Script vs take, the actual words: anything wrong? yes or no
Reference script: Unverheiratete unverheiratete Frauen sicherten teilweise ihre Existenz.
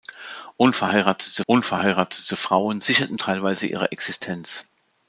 no